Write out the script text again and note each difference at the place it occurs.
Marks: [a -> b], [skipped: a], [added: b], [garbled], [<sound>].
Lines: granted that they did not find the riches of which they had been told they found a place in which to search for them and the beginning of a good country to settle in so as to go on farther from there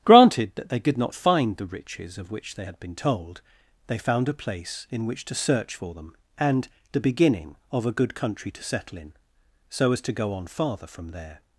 granted that they [did -> could] not find the riches of which they had been told they found a place in which to search for them and the beginning of a good country to settle in so as to go on farther from there